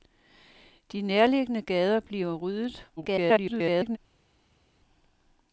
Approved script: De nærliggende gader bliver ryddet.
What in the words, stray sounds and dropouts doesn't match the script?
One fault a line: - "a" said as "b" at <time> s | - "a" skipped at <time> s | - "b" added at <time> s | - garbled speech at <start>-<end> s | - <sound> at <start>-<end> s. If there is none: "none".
- garbled speech at 3.0-4.0 s